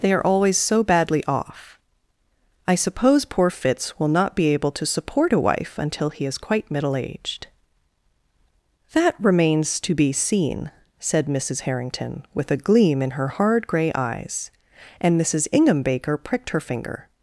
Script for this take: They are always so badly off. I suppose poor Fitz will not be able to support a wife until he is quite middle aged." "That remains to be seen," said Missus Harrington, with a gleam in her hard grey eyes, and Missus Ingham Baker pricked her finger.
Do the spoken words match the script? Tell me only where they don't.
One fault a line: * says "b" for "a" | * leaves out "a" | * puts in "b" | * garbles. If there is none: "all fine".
all fine